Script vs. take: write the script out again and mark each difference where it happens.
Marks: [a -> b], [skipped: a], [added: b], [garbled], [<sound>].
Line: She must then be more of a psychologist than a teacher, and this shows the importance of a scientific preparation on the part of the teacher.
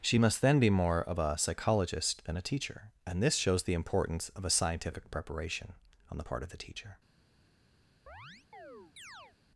She must then be more of a psychologist than a teacher, and this shows the importance of a scientific preparation on the part of the teacher. [chirp]